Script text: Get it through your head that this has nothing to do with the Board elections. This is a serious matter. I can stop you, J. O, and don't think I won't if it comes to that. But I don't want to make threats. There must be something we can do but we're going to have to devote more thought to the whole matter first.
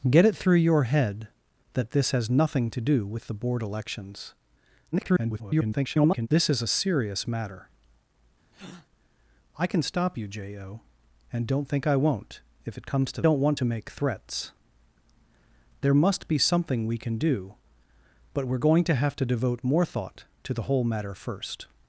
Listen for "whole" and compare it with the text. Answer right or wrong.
right